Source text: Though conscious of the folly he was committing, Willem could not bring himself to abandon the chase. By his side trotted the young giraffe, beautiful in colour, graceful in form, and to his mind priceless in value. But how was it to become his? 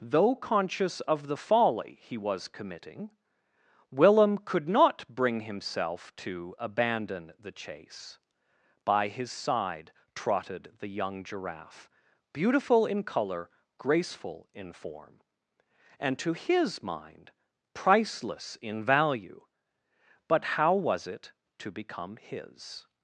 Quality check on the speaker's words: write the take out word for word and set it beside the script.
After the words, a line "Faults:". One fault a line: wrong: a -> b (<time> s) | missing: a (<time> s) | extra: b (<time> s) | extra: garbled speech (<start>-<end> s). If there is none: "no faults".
Though conscious of the folly he was committing, Willem could not bring himself to abandon the chase. By his side trotted the young giraffe, beautiful in colour, graceful in form, and to his mind priceless in value. But how was it to become his?
Faults:
no faults